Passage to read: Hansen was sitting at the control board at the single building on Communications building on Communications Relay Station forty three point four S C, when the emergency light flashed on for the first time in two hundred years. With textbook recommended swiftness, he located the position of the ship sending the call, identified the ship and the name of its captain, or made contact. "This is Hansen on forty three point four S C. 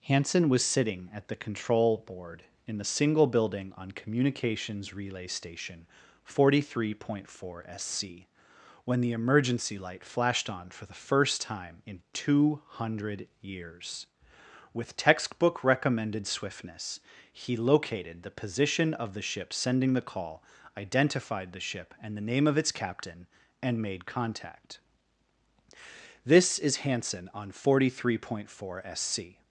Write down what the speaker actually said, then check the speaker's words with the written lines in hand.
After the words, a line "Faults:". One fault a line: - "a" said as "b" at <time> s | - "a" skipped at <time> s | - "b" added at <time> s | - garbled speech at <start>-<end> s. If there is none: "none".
Hansen was sitting at the control board in the single building on Communications Relay Station forty three point four S C, when the emergency light flashed on for the first time in two hundred years. With textbook recommended swiftness, he located the position of the ship sending the call, identified the ship and the name of its captain, and made contact. "This is Hansen on forty three point four S C.
Faults:
- "at" said as "in" at 2.6 s
- "building on Communications" skipped at 4.9 s
- "or" said as "and" at 23.6 s